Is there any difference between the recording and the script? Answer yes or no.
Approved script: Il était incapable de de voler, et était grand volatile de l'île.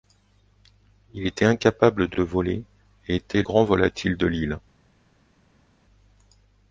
no